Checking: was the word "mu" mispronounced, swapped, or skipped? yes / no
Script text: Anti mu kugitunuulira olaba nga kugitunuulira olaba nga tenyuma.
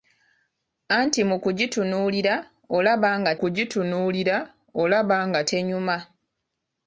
no